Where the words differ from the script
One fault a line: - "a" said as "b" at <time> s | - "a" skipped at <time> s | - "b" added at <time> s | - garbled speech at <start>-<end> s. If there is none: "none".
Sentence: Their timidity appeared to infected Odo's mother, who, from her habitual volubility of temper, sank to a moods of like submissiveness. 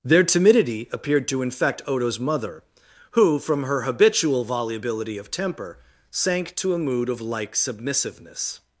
- "infected" said as "infect" at 1.4 s
- "moods" said as "mood" at 6.8 s